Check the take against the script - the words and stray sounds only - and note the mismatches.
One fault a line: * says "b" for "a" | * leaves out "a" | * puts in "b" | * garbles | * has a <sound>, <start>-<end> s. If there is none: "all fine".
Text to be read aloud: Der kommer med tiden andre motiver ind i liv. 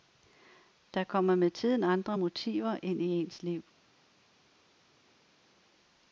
* puts in "ens"